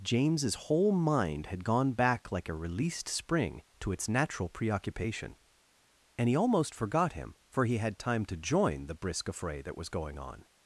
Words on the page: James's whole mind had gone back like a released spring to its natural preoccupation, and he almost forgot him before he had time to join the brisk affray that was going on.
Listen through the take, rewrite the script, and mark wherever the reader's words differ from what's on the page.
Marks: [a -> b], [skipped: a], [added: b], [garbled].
James's whole mind had gone back like a released spring to its natural preoccupation, and he almost forgot him [before -> for] he had time to join the brisk affray that was going on.